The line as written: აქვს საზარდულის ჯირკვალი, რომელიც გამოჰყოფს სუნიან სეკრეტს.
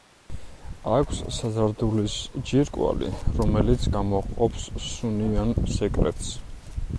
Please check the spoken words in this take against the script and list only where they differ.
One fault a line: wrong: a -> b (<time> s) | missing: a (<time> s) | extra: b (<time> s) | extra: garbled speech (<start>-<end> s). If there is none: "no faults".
no faults